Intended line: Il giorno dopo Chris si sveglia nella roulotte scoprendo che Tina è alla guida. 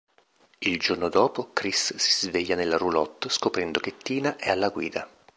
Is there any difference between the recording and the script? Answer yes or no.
no